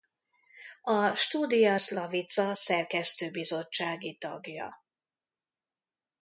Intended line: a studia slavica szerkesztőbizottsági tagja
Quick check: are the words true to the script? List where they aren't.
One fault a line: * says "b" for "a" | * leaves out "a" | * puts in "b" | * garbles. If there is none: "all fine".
all fine